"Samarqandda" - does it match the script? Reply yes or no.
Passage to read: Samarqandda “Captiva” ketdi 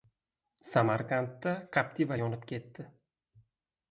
yes